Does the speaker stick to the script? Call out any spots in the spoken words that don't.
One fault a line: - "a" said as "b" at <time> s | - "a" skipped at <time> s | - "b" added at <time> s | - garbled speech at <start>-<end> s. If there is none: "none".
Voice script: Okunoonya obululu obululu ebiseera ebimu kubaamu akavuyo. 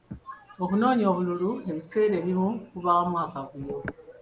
- "obululu" skipped at 1.5 s